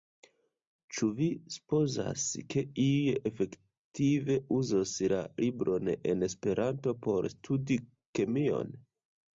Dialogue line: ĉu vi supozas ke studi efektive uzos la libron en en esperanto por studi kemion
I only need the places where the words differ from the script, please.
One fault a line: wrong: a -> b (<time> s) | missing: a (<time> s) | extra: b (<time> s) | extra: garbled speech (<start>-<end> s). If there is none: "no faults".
wrong: studi -> iuj (2.8 s)
missing: en (6.3 s)